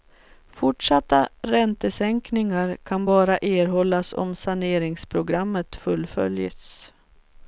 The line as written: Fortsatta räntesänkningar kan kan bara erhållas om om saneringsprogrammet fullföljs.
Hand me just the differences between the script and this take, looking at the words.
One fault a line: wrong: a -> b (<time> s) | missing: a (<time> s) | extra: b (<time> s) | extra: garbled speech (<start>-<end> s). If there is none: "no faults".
missing: kan (3.0 s)
missing: om (4.4 s)